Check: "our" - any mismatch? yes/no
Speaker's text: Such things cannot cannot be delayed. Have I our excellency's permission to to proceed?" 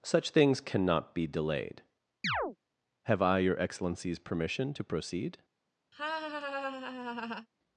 yes